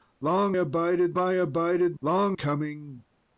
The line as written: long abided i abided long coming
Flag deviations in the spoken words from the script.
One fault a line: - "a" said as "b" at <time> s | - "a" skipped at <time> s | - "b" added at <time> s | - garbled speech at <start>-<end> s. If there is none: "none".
none